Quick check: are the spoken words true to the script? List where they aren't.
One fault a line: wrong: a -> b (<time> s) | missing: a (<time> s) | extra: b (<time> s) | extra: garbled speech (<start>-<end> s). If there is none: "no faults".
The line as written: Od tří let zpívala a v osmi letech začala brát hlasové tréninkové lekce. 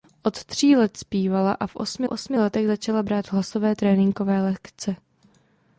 extra: osmi (2.1 s)